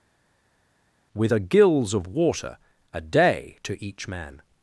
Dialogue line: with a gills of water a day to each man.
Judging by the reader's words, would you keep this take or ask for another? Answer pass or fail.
pass